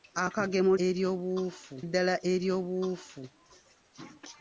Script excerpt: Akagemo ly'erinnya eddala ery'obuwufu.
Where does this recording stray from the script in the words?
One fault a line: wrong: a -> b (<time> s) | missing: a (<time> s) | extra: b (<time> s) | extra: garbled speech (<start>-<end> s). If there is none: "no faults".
wrong: ly'erinnya -> ery'obuwufu (0.9 s)